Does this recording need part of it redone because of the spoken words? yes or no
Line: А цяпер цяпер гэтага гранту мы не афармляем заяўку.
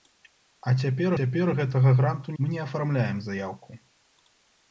no